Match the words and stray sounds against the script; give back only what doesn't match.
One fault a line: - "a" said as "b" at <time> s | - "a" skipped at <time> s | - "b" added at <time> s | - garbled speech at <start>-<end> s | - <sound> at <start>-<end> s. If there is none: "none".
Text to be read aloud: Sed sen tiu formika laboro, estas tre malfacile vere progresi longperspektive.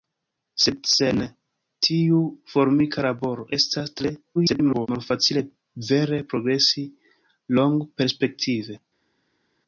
- garbled speech at 4.3-4.9 s